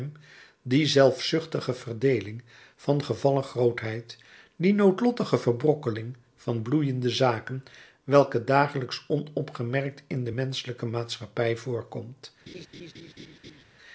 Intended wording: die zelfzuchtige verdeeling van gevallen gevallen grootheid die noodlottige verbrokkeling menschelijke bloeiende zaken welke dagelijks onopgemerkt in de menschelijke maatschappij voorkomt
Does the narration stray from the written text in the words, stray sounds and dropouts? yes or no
yes